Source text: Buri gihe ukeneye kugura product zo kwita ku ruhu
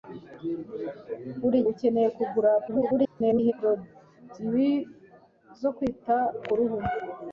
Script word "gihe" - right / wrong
wrong